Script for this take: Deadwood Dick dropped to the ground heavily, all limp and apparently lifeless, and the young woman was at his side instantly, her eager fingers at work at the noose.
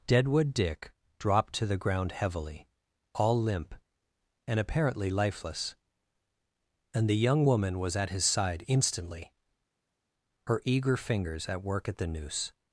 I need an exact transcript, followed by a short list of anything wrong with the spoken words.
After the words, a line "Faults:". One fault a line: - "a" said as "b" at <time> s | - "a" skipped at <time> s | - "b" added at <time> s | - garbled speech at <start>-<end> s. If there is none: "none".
Deadwood Dick dropped to the ground heavily, all limp and apparently lifeless, and the young woman was at his side instantly, her eager fingers at work at the noose.
Faults:
none